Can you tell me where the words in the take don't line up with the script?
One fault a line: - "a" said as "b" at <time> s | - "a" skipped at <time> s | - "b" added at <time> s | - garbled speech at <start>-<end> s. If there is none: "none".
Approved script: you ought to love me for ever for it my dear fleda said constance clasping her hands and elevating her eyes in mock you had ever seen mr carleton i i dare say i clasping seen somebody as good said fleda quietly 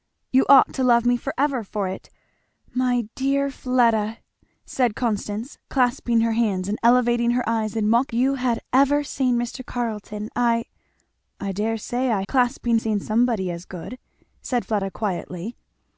none